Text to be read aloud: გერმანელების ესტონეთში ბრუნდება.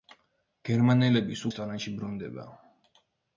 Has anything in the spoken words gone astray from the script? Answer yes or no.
no